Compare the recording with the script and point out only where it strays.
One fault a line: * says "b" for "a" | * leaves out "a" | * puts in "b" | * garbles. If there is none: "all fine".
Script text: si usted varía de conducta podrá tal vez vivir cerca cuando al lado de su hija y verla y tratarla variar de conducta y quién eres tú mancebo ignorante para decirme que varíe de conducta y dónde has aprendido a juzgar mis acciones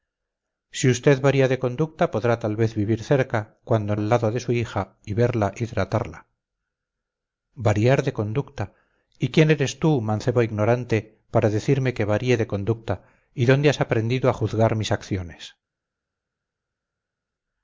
all fine